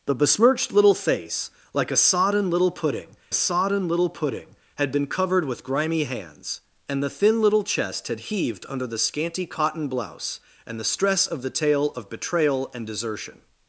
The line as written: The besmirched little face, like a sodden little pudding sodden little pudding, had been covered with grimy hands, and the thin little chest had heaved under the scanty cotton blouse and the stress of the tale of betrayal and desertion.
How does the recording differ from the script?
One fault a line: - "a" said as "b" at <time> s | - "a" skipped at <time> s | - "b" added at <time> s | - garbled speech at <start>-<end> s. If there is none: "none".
none